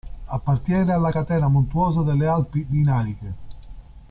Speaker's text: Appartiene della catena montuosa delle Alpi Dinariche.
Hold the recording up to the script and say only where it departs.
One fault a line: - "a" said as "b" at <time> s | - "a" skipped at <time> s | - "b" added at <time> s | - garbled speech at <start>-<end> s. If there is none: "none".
- "della" said as "alla" at 0.9 s